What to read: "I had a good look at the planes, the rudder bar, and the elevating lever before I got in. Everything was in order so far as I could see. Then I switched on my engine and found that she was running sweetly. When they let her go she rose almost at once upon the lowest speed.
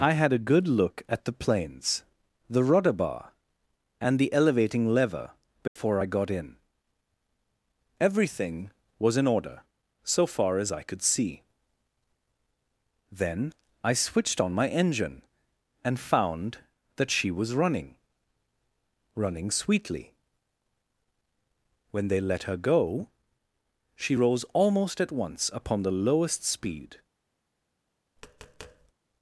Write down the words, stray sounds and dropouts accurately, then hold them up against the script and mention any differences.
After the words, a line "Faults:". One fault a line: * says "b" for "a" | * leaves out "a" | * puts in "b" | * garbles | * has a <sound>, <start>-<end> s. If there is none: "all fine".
"I had a good look at the planes, the rudder bar, and the elevating lever before I got in. Everything was in order so far as I could see. Then I switched on my engine and found that she was running running sweetly. When they let her go she rose almost at once upon the lowest speed.
Faults:
* has a dropout, 5.7-5.8 s
* puts in "running"
* has a tap, 28.2-28.9 s